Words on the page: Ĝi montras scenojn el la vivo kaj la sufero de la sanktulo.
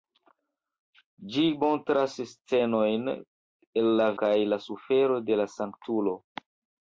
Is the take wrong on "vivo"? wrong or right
wrong